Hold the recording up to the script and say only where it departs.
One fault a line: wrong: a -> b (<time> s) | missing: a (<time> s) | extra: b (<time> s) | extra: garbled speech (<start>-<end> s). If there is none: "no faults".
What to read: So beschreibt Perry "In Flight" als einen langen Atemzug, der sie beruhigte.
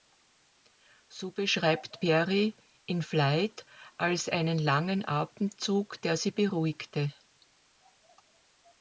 no faults